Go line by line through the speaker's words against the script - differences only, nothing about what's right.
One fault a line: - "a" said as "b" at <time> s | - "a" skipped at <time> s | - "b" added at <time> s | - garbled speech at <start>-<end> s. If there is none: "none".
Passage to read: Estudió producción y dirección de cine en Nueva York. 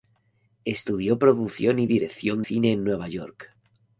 - "de" skipped at 2.4 s